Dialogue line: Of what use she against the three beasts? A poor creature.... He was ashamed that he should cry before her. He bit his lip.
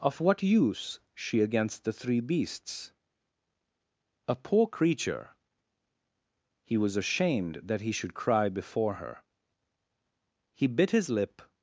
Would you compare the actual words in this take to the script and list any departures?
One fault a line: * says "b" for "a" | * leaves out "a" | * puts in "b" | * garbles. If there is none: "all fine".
all fine